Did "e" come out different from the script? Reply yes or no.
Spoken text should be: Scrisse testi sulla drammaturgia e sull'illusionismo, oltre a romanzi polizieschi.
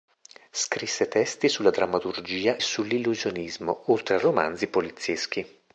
yes